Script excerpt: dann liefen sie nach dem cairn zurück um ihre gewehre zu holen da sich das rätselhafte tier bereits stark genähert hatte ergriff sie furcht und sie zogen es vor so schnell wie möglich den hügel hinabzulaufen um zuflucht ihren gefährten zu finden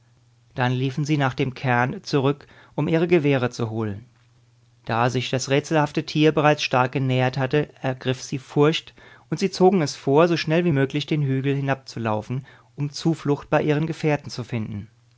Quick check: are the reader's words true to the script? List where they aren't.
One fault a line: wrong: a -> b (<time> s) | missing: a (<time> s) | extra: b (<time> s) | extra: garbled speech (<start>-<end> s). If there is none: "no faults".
extra: bei (13.5 s)